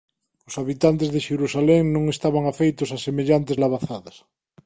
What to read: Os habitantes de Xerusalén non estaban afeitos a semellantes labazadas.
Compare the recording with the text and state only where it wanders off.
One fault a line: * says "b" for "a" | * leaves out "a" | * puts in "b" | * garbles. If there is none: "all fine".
all fine